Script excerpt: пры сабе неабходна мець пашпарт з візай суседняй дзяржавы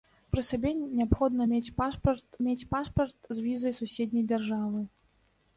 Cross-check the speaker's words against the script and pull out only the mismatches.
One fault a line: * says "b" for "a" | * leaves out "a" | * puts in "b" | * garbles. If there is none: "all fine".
* puts in "мець пашпарт"